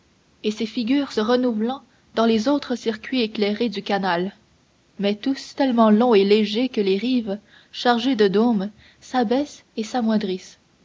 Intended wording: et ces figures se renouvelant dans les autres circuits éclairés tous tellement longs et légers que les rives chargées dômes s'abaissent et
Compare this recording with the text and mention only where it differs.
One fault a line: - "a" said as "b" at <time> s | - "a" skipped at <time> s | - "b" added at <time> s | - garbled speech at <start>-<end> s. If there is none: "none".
- "du canal mais" added at 3.7 s
- "de" added at 8.1 s